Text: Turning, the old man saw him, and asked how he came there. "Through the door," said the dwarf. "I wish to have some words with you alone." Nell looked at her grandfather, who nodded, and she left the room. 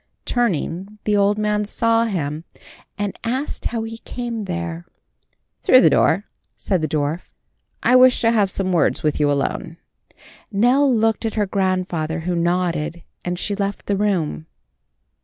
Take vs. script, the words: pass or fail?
pass